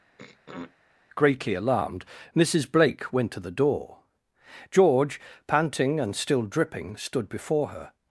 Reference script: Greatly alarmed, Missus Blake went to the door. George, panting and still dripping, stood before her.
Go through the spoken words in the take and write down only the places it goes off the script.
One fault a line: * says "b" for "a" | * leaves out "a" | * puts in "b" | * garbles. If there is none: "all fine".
all fine